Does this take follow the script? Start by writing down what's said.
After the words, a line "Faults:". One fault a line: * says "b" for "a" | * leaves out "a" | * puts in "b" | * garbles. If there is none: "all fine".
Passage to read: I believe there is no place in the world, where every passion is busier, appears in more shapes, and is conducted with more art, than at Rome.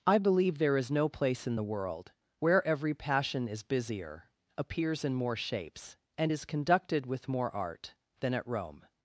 I believe there is no place in the world, where every passion is busier, appears in more shapes, and is conducted with more art, than at Rome.
Faults:
all fine